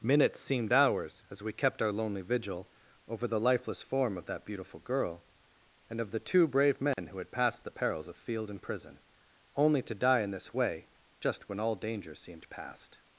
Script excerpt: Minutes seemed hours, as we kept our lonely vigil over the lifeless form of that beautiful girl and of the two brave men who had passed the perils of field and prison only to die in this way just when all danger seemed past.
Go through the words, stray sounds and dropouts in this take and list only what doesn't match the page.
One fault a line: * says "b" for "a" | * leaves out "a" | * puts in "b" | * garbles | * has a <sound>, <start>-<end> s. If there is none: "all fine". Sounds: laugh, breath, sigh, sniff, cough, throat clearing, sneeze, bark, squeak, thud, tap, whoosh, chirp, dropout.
* has a dropout, 6.9-7.0 s